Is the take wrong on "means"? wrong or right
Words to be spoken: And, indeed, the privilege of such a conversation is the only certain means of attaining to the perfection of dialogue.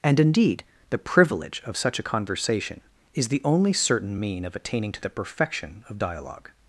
wrong